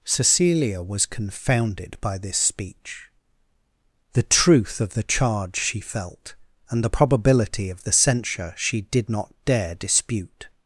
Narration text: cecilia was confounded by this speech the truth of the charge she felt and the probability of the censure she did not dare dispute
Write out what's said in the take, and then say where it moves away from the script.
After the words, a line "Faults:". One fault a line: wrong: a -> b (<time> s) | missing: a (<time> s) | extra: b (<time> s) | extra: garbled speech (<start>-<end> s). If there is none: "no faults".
cecilia was confounded by this speech the truth of the charge she felt and the probability of the censure she did not dare dispute
Faults:
no faults